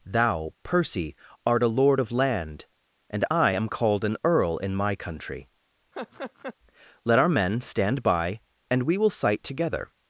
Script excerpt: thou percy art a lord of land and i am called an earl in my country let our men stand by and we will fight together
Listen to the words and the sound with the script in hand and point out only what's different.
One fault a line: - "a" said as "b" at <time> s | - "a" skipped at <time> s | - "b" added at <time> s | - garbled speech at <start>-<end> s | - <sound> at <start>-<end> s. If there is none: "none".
- laugh at 5.9-6.5 s
- "fight" said as "sight" at 9.1 s